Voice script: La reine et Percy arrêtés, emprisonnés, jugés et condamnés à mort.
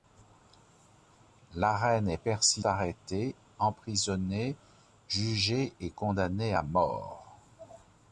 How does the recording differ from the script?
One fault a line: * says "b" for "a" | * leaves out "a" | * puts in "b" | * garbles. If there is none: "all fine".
all fine